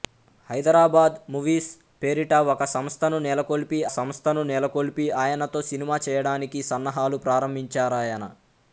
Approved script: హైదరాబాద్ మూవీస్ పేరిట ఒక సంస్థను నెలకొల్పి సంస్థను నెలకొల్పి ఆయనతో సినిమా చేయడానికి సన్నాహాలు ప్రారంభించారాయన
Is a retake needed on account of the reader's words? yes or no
no